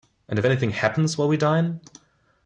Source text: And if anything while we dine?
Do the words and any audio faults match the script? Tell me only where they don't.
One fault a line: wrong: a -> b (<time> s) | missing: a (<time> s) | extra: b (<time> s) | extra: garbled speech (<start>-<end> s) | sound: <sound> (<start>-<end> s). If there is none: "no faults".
extra: happens (0.7 s)